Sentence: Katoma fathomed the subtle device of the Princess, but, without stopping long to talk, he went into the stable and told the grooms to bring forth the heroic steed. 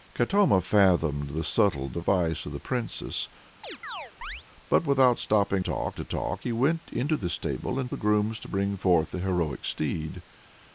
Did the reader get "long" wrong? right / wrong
wrong